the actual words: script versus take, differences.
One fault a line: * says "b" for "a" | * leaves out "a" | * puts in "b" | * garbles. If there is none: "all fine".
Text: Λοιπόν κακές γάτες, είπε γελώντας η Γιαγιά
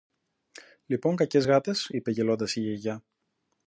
all fine